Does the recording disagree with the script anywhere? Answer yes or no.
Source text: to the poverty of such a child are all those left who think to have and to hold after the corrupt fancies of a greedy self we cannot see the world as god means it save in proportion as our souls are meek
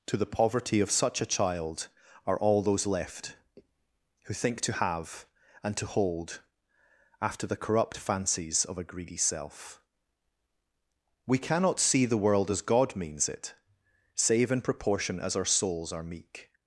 no